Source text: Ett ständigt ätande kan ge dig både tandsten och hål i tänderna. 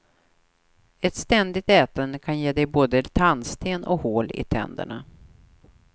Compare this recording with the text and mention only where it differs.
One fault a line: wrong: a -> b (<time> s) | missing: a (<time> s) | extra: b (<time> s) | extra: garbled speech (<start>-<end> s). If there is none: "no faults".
no faults